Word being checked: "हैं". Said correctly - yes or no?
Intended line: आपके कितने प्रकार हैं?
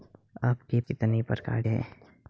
yes